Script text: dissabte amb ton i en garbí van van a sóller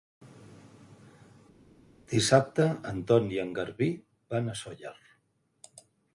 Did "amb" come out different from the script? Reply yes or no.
yes